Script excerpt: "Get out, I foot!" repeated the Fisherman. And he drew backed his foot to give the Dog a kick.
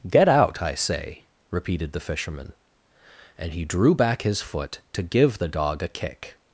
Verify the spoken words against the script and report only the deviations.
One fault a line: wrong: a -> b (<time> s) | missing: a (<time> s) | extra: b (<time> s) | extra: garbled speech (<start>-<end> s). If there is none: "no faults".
wrong: foot -> say (0.7 s)
wrong: backed -> back (3.9 s)